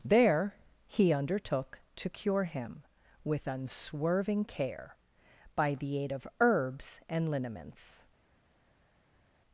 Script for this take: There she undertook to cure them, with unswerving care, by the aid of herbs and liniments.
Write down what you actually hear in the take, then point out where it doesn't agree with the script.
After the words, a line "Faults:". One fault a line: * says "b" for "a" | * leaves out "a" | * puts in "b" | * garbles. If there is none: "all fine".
There he undertook to cure him, with unswerving care, by the aid of herbs and liniments.
Faults:
* says "he" for "she"
* says "him" for "them"